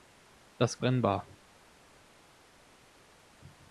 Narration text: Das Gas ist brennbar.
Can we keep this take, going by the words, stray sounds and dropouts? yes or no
no